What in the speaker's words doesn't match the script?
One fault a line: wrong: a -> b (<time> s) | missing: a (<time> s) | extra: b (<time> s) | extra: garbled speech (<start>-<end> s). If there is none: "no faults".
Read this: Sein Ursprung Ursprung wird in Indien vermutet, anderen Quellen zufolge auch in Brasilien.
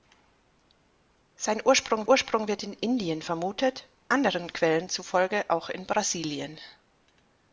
no faults